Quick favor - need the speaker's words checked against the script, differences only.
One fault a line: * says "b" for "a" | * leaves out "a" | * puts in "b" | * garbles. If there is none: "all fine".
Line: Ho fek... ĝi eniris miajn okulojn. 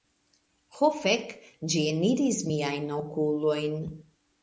all fine